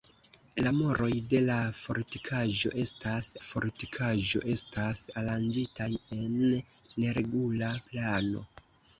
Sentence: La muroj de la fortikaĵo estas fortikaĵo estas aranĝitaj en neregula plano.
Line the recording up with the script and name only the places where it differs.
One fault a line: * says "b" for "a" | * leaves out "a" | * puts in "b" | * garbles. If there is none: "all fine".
all fine